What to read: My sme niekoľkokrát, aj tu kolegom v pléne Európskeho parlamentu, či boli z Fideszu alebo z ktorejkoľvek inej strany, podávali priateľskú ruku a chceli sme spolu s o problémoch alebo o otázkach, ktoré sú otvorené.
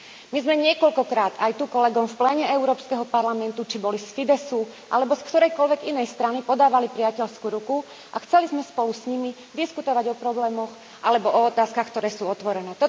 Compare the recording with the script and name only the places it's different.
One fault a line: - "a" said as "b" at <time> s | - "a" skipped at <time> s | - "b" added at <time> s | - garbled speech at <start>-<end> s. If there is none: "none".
- "nimi diskutovať" added at 9.1 s